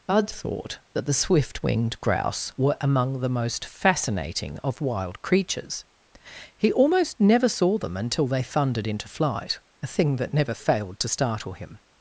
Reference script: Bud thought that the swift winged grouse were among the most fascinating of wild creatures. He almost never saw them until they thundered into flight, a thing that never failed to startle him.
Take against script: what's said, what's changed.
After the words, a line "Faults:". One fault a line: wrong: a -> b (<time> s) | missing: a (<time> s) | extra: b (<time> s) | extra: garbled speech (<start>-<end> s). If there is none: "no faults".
Bud thought that the swift winged grouse were among the most fascinating of wild creatures. He almost never saw them until they thundered into flight, a thing that never failed to startle him.
Faults:
no faults